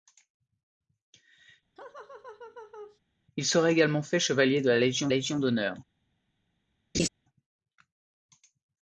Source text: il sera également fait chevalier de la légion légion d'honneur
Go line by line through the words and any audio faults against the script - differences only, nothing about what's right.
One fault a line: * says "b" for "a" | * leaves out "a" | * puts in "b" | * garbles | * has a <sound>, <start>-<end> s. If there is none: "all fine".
* has a laugh, 1.8-3.0 s
* has a laugh, 6.9-7.1 s